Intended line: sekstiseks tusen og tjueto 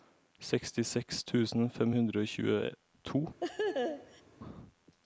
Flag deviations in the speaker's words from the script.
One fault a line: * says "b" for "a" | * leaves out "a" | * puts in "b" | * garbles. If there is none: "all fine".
* puts in "fem hundre"